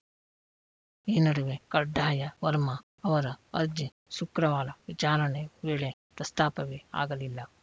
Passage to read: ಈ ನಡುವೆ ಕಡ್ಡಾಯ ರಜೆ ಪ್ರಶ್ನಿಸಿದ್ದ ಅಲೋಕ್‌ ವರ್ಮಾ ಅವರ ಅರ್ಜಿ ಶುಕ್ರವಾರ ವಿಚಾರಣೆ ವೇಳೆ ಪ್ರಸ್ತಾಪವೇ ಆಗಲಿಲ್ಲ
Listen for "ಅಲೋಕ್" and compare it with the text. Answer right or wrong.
wrong